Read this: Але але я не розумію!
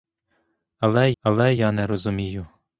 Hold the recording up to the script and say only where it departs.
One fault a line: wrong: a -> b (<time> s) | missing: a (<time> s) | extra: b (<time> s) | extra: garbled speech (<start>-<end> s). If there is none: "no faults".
no faults